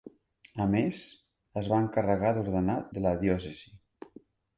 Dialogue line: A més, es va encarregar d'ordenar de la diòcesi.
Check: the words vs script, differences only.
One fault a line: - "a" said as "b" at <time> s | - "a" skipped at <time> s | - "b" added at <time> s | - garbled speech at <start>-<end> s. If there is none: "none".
none